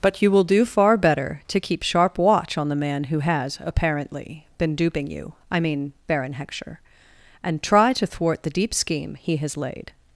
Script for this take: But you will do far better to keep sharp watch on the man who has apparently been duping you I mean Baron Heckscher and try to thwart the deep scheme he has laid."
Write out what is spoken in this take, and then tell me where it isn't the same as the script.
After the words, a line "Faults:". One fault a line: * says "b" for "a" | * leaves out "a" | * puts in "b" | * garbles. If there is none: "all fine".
But you will do far better to keep sharp watch on the man who has apparently been duping you I mean Baron Heckscher and try to thwart the deep scheme he has laid."
Faults:
all fine